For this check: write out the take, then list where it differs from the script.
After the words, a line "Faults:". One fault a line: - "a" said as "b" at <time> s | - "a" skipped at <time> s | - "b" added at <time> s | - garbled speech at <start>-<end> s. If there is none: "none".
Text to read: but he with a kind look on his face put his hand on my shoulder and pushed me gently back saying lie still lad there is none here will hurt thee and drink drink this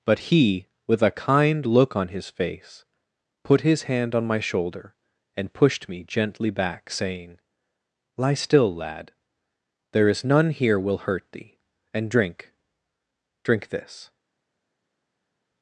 but he with a kind look on his face put his hand on my shoulder and pushed me gently back saying lie still lad there is none here will hurt thee and drink drink this
Faults:
none